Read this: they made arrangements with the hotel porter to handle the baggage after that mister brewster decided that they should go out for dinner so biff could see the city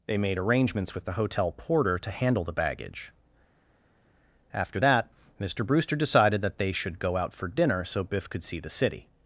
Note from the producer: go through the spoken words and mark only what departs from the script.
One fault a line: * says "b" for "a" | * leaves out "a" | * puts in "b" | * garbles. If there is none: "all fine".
all fine